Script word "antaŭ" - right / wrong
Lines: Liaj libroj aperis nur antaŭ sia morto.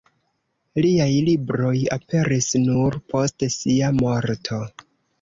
wrong